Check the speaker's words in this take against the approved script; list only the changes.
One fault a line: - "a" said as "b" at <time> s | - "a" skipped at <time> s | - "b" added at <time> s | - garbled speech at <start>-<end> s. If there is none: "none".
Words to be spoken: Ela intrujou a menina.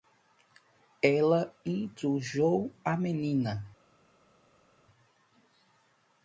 none